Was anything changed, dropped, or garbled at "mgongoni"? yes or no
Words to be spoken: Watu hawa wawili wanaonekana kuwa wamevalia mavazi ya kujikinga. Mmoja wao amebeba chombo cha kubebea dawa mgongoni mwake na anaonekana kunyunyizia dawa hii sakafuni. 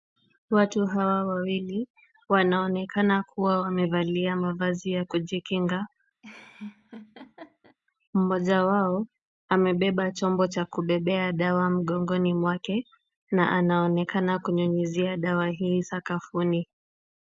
no